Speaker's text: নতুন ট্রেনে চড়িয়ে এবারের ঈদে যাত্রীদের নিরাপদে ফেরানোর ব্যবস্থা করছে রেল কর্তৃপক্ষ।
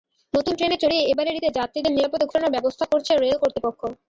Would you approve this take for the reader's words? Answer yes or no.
yes